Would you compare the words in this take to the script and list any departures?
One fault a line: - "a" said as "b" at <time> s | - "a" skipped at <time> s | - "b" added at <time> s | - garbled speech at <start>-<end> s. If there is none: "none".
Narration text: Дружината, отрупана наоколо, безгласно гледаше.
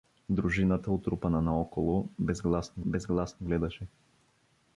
- "безгласно" added at 2.8 s